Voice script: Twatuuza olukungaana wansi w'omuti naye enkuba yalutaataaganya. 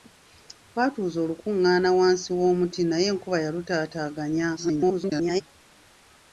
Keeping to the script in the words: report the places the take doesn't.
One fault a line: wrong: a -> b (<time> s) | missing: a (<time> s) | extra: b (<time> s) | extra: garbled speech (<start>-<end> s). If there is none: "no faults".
extra: garbled speech (4.6-5.4 s)